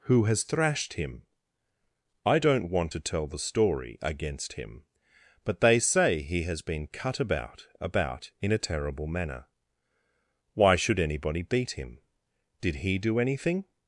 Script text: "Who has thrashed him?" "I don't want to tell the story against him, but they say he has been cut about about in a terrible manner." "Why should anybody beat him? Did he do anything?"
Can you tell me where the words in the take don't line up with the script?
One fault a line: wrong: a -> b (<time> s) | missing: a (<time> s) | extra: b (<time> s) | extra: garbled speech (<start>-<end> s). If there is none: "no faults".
no faults